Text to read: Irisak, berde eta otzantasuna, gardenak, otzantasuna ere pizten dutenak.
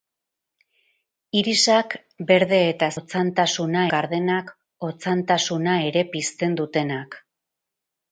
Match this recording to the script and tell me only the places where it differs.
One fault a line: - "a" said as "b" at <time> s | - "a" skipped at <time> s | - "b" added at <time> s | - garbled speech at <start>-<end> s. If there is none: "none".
none